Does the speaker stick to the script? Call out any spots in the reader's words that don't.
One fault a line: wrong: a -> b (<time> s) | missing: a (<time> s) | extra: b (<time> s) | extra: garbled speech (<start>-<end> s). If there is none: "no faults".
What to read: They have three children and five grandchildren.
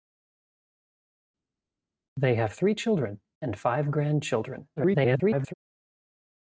extra: garbled speech (4.8-5.5 s)